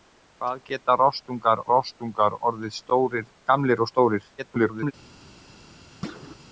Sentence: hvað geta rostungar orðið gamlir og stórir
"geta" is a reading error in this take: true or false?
false